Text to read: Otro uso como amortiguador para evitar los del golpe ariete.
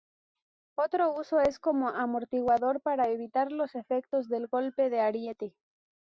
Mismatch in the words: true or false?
true